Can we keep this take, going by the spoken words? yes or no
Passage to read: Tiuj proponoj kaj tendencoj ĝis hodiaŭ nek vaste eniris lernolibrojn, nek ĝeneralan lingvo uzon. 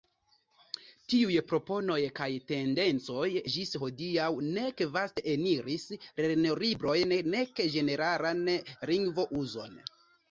yes